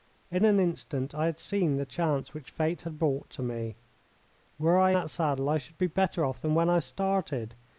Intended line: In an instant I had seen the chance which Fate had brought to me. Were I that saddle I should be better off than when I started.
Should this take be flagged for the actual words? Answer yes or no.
no